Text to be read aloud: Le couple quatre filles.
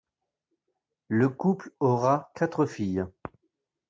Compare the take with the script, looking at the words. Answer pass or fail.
fail